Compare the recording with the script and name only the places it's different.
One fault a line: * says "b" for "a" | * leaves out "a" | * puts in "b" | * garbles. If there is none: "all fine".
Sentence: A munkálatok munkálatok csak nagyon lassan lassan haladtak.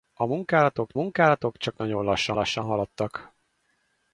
all fine